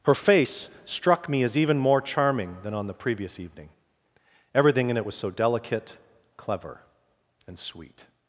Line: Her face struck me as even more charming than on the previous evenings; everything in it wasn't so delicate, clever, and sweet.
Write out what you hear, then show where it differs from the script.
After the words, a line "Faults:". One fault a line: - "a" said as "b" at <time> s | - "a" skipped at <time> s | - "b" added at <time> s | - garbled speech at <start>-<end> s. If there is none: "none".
Her face struck me as even more charming than on the previous evening; everything in it was so delicate, clever, and sweet.
Faults:
- "evenings" said as "evening" at 3.4 s
- "wasn't" said as "was" at 5.0 s